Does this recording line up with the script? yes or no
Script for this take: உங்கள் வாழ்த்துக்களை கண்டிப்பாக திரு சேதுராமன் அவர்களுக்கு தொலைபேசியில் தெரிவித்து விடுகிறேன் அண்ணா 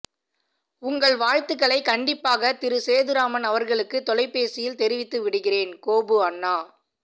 no